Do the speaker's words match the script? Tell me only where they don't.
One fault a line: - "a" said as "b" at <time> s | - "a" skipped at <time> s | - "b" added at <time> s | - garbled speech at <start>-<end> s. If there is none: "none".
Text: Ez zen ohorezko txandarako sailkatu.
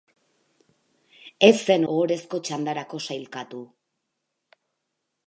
none